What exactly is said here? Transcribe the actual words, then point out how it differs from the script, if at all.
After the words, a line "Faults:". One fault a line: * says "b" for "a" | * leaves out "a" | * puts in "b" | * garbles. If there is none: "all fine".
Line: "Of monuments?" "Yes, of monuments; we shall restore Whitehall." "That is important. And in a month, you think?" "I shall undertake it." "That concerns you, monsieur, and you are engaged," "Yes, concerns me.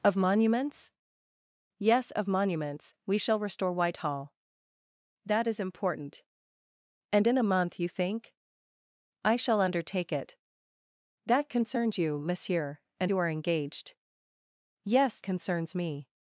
"Of monuments?" "Yes, of monuments; we shall restore Whitehall." "That is important. And in a month, you think?" "I shall undertake it." "That concerns you, monsieur, and you are engaged," "Yes, concerns me.
Faults:
all fine